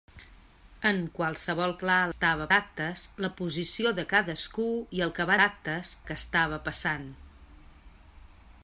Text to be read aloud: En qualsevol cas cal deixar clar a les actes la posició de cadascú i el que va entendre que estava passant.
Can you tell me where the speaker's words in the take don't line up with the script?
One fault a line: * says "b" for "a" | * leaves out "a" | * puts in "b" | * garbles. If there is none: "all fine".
* leaves out "cas cal deixar"
* says "estava" for "les"
* says "actes" for "entendre"